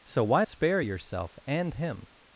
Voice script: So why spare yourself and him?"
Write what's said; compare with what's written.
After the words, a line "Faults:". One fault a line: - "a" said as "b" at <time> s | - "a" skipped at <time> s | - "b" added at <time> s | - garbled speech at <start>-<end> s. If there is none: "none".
So why spare yourself and him?"
Faults:
none